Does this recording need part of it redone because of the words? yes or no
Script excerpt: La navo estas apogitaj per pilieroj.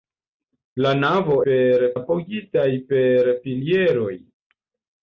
yes